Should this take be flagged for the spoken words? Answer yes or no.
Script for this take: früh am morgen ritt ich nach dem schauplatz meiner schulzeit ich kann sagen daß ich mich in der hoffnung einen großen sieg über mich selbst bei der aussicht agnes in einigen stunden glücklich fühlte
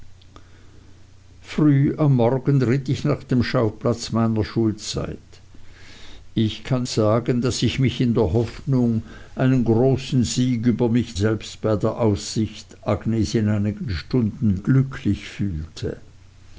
no